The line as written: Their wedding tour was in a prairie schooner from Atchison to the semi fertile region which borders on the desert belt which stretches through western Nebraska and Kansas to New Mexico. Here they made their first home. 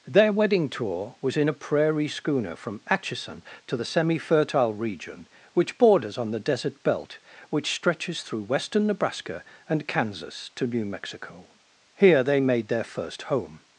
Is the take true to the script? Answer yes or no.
yes